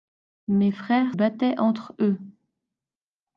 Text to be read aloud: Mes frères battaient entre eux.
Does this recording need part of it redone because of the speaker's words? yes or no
no